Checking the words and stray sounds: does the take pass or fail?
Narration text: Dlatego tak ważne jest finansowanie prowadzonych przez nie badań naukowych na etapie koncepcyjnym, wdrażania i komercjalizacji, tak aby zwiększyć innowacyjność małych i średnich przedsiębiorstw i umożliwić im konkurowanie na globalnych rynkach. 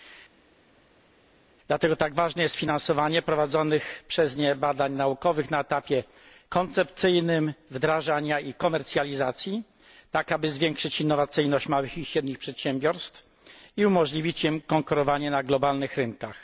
pass